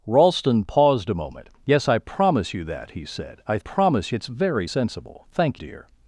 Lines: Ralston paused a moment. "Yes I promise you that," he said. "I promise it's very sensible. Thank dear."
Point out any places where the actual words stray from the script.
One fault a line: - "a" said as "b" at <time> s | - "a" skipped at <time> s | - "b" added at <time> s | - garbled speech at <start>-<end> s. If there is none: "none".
none